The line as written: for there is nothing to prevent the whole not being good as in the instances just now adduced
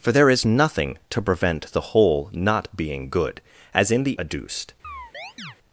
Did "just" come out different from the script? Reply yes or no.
yes